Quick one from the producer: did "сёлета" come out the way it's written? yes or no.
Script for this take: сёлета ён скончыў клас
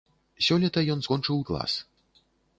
yes